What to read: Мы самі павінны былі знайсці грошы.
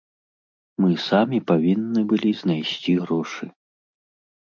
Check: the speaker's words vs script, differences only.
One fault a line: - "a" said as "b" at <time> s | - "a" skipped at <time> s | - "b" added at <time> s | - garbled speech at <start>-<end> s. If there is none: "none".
none